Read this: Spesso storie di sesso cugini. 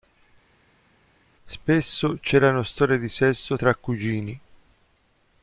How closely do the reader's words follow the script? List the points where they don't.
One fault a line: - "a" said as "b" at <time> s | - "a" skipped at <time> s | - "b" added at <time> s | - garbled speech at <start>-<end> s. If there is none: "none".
- "c'erano" added at 2.2 s
- "tra" added at 3.5 s